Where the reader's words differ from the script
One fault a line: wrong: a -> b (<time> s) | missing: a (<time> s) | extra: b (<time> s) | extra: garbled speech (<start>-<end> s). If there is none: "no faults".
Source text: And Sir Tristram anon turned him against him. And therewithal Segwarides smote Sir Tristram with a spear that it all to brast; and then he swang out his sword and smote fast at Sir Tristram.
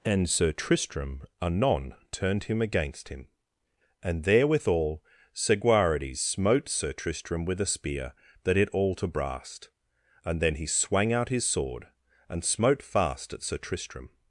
no faults